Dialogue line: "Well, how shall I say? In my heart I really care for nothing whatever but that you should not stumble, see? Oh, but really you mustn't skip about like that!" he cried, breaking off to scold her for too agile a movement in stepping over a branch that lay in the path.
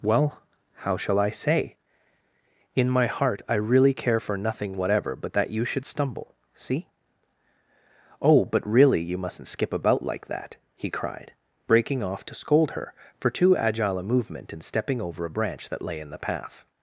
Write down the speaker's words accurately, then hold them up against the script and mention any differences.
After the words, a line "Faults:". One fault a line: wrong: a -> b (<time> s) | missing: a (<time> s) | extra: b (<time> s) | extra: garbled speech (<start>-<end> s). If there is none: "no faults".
"Well, how shall I say? In my heart I really care for nothing whatever but that you should stumble, see? Oh, but really you mustn't skip about like that!" he cried, breaking off to scold her for too agile a movement in stepping over a branch that lay in the path.
Faults:
missing: not (5.8 s)